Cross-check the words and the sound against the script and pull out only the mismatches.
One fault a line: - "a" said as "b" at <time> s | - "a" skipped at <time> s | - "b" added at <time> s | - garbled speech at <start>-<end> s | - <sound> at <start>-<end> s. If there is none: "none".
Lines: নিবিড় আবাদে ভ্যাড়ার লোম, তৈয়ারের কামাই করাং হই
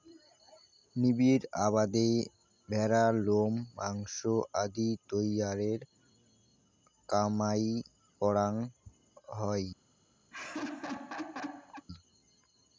- "মাংস আদি" added at 3.8 s
- laugh at 10.3-11.9 s